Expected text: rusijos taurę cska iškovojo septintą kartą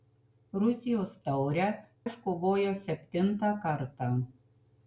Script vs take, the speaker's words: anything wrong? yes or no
yes